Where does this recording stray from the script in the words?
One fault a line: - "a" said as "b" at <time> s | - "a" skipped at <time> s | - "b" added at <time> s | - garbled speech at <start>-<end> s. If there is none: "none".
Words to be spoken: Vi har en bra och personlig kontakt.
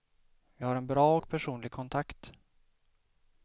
none